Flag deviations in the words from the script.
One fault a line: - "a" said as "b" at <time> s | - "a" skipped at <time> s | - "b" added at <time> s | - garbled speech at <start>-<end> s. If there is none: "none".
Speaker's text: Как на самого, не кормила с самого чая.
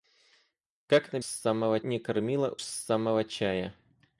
none